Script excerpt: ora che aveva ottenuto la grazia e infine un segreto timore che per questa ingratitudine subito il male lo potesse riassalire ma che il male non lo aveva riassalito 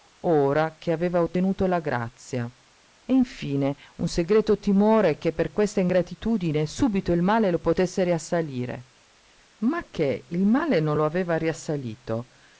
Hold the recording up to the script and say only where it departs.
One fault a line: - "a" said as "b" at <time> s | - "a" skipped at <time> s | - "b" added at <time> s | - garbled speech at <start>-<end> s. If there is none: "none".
none